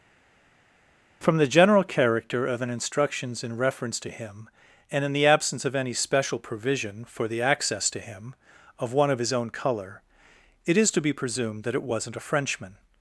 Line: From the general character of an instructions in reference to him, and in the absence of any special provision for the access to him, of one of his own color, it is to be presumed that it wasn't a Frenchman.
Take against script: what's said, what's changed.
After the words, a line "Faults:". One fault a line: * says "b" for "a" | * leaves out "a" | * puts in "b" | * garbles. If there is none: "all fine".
From the general character of an instructions in reference to him, and in the absence of any special provision for the access to him, of one of his own color, it is to be presumed that it wasn't a Frenchman.
Faults:
all fine